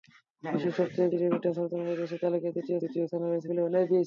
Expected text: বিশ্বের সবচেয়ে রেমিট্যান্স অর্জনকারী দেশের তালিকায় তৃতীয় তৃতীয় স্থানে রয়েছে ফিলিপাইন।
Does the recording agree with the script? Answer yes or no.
yes